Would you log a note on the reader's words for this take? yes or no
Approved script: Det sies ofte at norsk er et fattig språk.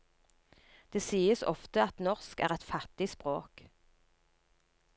no